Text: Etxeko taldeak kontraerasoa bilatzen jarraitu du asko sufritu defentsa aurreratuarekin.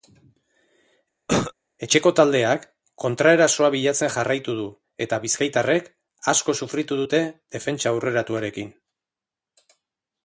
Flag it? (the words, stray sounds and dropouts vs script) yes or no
yes